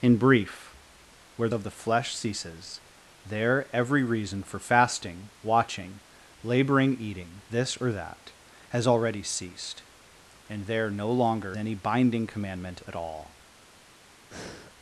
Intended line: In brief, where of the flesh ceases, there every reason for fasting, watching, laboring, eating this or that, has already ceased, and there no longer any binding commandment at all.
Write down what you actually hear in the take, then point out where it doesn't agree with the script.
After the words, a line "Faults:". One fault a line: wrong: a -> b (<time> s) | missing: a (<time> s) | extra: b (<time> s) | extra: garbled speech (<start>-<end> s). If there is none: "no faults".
In brief, where of the flesh ceases, there every reason for fasting, watching, laboring, eating this or that, has already ceased, and there no longer any binding commandment at all.
Faults:
no faults